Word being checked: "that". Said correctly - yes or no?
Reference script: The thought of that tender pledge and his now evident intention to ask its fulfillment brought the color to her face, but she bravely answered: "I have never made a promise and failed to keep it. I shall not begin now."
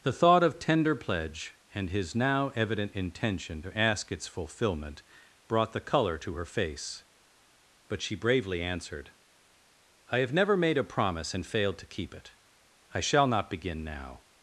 no